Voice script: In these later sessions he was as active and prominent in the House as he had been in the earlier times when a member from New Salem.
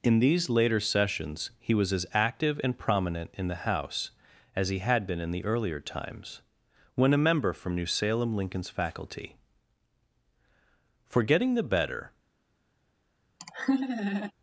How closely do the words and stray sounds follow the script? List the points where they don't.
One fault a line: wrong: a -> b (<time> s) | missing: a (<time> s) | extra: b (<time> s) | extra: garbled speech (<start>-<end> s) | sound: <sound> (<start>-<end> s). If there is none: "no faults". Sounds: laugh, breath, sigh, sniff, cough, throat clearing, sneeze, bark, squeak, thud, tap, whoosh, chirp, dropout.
extra: Lincoln's faculty for getting the better (8.3 s)
sound: laugh (13.4-14.3 s)